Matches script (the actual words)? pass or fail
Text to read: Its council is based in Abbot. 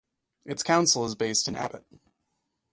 pass